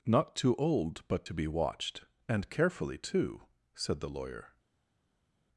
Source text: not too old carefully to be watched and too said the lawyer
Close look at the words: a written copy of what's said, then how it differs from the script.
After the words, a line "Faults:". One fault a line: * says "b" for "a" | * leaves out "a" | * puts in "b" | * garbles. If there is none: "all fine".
not too old but to be watched and carefully too said the lawyer
Faults:
* says "but" for "carefully"
* puts in "carefully"